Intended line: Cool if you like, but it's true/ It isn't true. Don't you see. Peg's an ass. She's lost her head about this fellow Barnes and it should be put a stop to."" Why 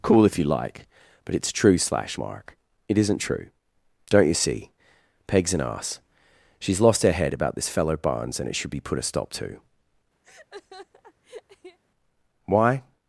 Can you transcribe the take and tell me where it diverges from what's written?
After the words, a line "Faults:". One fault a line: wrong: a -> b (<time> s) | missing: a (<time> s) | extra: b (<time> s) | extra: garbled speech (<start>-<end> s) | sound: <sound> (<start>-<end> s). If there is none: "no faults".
Cool if you like, but it's true/ slash mark It isn't true. Don't you see. Peg's an ass. She's lost her head about this fellow Barnes and it should be put a stop to."" Why
Faults:
extra: slash mark (1.8 s)
sound: laugh (10.2-11.8 s)